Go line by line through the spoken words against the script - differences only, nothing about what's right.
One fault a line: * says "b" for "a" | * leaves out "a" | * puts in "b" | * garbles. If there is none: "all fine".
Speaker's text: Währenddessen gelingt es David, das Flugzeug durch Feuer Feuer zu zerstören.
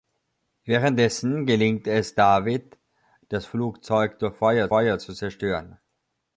all fine